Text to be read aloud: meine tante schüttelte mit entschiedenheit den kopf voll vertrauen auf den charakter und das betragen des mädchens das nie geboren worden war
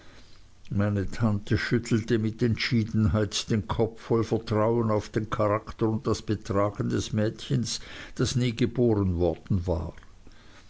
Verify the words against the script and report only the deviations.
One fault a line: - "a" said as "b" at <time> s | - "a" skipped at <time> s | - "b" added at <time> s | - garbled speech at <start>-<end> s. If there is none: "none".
none